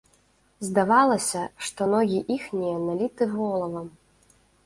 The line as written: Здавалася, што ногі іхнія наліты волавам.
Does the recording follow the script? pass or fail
pass